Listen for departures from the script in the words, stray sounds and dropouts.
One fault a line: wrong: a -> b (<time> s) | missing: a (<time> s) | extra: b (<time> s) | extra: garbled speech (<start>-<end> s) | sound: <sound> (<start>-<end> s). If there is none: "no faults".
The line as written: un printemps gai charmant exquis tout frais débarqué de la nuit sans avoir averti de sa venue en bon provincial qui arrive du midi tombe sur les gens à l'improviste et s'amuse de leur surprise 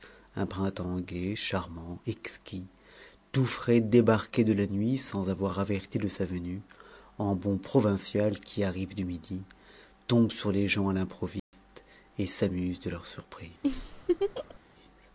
sound: dropout (11.4-11.5 s)
sound: laugh (13.6-14.6 s)